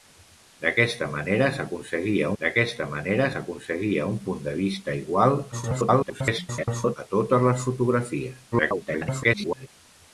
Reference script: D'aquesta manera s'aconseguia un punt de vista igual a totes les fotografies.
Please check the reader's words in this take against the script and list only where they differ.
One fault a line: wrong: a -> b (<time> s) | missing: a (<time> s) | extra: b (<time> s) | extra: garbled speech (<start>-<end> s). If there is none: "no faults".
extra: d'aquesta manera s'aconseguia (2.4 s)
extra: garbled speech (5.5-7.0 s)
extra: garbled speech (8.5-9.7 s)